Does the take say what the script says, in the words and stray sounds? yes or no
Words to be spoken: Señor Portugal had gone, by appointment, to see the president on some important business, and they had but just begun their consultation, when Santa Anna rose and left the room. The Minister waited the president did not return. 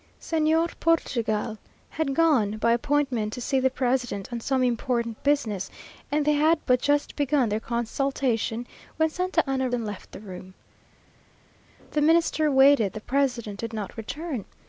no